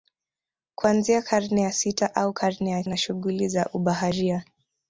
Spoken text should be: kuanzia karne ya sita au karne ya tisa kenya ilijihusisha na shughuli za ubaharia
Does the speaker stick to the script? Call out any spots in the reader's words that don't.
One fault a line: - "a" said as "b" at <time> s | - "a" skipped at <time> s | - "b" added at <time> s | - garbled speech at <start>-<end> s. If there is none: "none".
- "tisa kenya ilijihusisha" skipped at 2.8 s